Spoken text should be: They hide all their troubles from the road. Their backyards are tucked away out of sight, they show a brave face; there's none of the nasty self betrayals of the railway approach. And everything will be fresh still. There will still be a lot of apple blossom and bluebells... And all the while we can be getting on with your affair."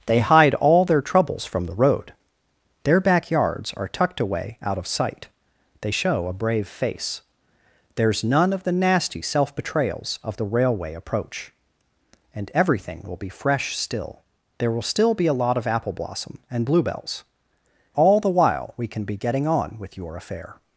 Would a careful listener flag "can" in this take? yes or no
no